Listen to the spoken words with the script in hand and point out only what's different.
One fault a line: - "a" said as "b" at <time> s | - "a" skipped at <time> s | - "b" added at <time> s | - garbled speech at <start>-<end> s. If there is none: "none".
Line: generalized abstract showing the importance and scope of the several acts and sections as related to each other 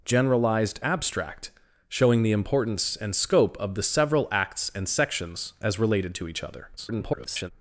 - garbled speech at 6.8-7.5 s